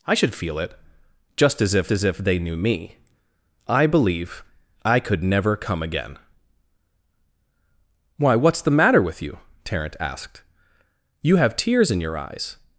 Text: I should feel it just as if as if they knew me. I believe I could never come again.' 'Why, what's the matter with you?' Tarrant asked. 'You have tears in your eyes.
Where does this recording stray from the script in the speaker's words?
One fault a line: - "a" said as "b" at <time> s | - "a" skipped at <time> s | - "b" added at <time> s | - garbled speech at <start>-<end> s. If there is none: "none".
none